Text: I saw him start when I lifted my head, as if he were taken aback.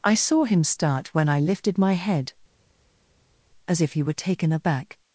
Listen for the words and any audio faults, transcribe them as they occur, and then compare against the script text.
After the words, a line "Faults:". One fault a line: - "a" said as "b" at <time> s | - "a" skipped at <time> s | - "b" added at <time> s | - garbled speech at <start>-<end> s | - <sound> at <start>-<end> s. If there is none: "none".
I saw him start when I lifted my head, as if he were taken aback.
Faults:
none